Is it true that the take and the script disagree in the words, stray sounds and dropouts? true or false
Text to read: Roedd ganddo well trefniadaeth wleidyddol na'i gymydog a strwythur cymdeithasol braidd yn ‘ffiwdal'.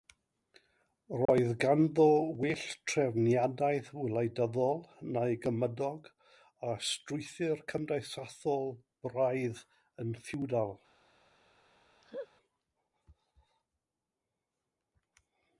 true